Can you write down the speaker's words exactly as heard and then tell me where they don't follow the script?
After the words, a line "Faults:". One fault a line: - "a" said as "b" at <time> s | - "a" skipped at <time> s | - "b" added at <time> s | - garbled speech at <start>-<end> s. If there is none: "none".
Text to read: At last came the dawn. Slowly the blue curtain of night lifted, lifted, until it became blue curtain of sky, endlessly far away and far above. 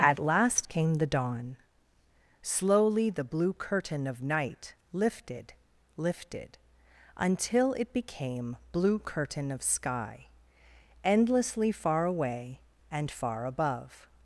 At last came the dawn. Slowly the blue curtain of night lifted, lifted, until it became blue curtain of sky, endlessly far away and far above.
Faults:
none